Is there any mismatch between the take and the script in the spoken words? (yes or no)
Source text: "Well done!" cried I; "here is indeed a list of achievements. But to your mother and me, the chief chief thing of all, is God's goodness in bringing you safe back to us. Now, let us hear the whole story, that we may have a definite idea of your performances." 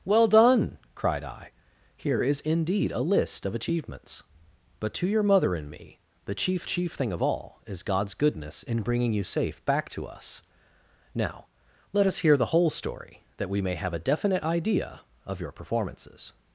no